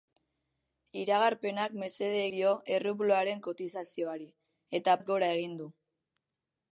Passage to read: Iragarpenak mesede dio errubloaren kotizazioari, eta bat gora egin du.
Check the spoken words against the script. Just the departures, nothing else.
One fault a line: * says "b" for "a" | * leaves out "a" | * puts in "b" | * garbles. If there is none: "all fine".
all fine